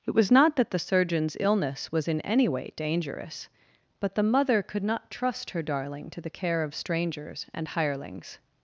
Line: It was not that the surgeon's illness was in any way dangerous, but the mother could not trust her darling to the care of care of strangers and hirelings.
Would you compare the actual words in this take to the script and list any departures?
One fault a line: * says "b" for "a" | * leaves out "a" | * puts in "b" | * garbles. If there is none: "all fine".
* leaves out "care of"